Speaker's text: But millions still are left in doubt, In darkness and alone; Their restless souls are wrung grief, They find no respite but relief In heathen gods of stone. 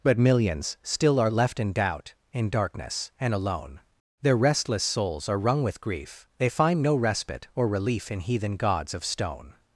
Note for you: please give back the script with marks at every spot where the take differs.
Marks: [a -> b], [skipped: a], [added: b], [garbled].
But millions still are left in doubt, In darkness and alone; Their restless souls are wrung [added: with] grief, They find no respite [but -> or] relief In heathen gods of stone.